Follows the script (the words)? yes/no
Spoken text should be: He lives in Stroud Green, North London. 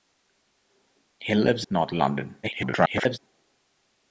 no